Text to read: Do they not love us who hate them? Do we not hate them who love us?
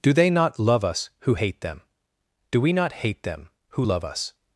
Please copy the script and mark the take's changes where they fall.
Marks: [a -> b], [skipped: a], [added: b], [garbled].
Do they not love us who hate them? Do we not hate them who love us?